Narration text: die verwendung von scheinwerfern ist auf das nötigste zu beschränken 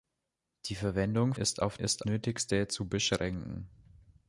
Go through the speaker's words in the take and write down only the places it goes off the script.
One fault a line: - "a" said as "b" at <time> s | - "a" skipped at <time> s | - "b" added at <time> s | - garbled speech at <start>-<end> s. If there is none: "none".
- "von scheinwerfern" skipped at 1.4 s
- "das" said as "ist" at 1.8 s